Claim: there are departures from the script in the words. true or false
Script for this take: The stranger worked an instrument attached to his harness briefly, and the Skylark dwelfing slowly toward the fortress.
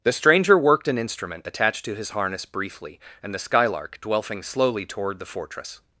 false